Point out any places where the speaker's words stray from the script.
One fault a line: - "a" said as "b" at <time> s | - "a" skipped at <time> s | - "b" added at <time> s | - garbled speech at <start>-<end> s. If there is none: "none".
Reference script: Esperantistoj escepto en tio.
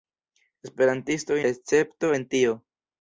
none